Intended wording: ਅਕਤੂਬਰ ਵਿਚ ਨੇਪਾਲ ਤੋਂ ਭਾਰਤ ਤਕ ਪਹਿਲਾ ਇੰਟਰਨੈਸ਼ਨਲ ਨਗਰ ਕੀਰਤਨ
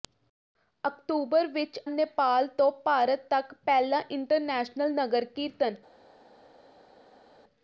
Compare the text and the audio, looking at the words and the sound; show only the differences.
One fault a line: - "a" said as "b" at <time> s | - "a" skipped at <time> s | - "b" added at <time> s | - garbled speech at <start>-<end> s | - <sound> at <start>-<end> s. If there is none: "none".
none